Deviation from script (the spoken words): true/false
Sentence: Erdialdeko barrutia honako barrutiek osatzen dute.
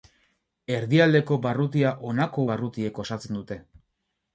false